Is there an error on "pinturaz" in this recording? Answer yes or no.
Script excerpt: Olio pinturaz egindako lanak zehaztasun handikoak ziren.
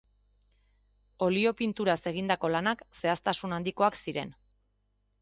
no